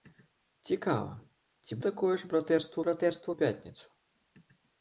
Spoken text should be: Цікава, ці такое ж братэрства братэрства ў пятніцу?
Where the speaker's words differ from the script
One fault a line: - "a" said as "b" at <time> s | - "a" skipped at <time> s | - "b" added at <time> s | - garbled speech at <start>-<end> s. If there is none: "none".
none